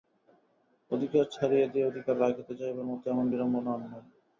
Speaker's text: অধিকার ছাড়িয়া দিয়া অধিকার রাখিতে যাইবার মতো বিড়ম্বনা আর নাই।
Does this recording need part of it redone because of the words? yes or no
yes